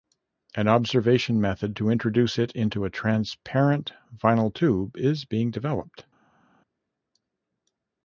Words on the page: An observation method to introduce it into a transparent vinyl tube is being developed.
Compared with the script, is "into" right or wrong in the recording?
right